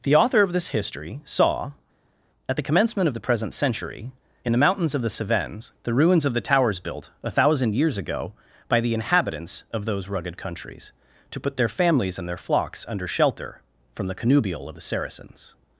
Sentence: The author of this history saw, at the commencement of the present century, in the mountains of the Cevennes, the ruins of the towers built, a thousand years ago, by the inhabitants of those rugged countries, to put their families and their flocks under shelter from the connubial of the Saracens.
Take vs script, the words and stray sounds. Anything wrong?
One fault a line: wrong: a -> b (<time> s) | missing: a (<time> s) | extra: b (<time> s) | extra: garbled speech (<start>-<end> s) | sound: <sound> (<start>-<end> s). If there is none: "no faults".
no faults